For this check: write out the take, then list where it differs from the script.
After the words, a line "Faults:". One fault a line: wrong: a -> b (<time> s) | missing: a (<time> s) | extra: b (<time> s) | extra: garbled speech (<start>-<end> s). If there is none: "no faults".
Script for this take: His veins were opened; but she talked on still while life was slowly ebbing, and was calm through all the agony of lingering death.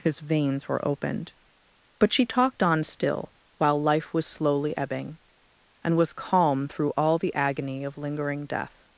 His veins were opened; but she talked on still while life was slowly ebbing, and was calm through all the agony of lingering death.
Faults:
no faults